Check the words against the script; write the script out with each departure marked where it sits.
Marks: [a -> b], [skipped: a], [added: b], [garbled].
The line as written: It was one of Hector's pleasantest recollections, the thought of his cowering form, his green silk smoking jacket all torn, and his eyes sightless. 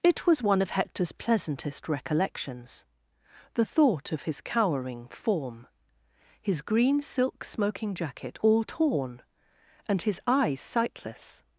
It was one of Hector's pleasantest recollections, the thought of his cowering form, his green silk smoking jacket all torn, and his eyes sightless.